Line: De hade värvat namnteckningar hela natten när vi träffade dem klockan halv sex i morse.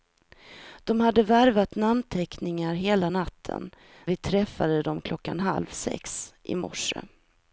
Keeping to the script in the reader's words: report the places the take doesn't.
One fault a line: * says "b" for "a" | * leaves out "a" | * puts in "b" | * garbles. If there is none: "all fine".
* leaves out "när"